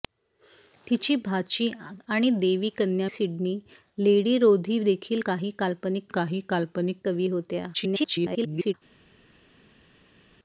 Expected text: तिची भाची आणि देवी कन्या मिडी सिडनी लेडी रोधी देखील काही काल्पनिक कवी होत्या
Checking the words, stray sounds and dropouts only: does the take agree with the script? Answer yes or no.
no